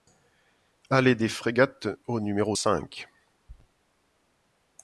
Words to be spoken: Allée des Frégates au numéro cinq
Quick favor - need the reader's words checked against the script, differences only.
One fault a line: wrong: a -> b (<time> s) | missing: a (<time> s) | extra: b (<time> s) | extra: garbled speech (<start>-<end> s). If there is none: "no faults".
no faults